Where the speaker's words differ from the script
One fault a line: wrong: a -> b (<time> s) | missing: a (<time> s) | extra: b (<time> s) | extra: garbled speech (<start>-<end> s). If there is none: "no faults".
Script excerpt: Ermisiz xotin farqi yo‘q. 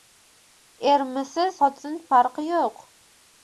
no faults